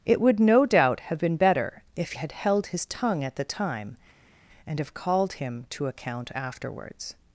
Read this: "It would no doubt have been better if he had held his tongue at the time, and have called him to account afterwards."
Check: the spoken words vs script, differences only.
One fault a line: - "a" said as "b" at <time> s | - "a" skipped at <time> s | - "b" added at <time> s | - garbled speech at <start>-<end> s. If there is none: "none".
- "he" skipped at 2.1 s